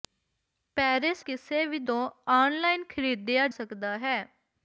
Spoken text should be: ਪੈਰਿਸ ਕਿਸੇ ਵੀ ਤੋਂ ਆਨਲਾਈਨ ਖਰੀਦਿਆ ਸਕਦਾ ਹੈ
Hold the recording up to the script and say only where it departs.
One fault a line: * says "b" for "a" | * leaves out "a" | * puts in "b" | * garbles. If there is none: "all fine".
all fine